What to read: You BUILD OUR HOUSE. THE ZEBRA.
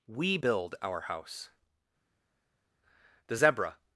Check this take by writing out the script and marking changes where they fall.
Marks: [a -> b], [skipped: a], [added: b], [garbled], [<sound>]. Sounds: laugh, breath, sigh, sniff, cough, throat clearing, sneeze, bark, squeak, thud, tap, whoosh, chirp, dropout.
[You -> WE] BUILD OUR HOUSE. THE ZEBRA.